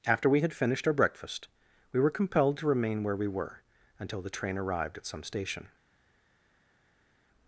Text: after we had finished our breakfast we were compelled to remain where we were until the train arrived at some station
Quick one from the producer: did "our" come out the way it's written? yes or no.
yes